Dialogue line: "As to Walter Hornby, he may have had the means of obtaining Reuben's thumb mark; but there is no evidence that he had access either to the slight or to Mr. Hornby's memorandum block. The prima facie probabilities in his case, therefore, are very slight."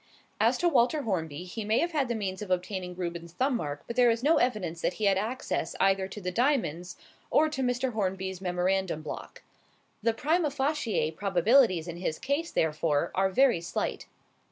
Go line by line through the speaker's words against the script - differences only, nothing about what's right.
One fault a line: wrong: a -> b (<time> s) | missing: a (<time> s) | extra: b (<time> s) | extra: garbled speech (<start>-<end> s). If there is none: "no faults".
wrong: slight -> diamonds (6.3 s)